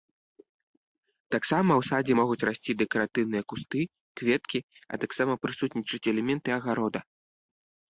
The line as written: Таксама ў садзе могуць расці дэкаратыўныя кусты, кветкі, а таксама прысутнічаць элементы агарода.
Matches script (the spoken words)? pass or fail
pass